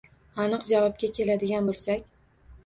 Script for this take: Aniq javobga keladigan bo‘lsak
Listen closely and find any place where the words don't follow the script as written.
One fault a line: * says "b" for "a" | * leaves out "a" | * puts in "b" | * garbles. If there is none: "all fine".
all fine